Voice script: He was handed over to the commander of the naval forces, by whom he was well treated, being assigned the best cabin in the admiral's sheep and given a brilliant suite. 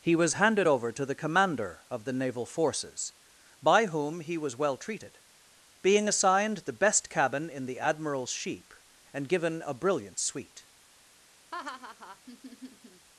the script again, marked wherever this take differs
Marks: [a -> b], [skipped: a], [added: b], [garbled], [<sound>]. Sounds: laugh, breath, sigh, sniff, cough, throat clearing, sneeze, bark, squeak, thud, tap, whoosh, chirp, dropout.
He was handed over to the commander of the naval forces, by whom he was well treated, being assigned the best cabin in the admiral's sheep and given a brilliant suite. [laugh]